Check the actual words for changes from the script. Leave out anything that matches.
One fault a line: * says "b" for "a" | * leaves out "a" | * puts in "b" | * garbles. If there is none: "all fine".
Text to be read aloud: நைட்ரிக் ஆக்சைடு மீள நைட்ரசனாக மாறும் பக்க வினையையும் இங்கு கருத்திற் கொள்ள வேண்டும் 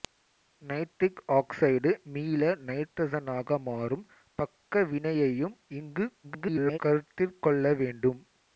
* garbles